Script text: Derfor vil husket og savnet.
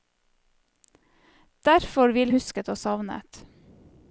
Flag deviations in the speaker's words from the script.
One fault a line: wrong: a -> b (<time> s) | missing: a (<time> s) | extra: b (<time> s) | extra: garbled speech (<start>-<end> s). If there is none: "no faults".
no faults